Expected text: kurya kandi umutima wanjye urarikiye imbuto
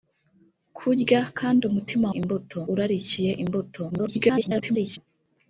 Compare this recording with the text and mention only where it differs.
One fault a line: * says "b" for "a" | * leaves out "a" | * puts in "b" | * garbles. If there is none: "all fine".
* says "imbuto" for "wanjye"
* garbles